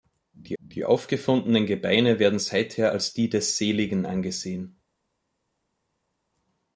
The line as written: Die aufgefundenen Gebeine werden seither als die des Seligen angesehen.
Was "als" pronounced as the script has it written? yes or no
yes